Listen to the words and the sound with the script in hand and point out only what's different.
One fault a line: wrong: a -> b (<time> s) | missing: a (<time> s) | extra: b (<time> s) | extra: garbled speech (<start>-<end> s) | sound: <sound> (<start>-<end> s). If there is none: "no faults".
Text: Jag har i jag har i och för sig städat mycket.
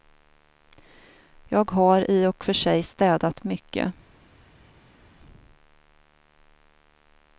missing: jag har i (2.3 s)